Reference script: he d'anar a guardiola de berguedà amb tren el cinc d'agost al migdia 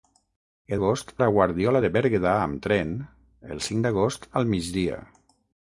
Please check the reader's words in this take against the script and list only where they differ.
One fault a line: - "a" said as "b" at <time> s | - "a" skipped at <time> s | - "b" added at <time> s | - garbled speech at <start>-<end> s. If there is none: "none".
- "d'anar" said as "d'agost" at 0.7 s